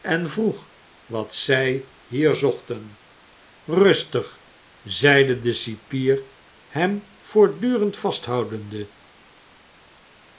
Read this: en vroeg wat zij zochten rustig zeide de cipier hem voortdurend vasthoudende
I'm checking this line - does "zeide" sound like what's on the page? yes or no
yes